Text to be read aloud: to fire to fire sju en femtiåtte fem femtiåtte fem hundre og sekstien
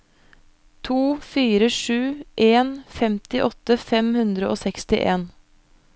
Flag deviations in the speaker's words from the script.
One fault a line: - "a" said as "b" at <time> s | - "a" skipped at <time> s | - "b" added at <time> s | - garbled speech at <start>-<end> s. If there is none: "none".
- "to fire" skipped at 1.7 s
- "femtiåtte fem" skipped at 4.1 s